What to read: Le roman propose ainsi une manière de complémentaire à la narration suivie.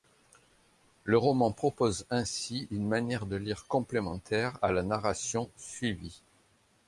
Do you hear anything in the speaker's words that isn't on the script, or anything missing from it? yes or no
yes